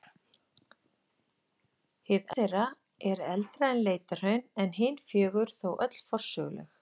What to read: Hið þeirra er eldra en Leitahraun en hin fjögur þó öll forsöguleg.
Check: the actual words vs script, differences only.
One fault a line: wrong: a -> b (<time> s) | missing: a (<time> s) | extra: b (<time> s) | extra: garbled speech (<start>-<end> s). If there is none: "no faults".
no faults